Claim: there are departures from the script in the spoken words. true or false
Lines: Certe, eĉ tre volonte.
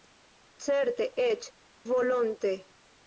true